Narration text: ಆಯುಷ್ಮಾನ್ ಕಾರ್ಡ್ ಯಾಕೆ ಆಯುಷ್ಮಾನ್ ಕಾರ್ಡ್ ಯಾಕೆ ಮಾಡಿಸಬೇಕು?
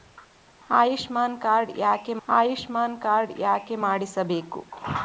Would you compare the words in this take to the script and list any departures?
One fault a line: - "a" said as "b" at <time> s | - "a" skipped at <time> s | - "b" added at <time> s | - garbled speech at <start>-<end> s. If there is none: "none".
none